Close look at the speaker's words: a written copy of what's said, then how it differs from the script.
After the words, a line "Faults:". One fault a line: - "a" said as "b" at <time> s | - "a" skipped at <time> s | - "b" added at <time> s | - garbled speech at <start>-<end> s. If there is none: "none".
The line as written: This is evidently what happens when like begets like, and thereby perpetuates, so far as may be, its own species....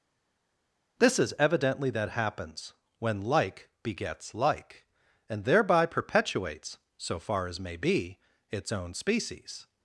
This is evidently that happens when like begets like, and thereby perpetuates, so far as may be, its own species....
Faults:
- "what" said as "that" at 1.9 s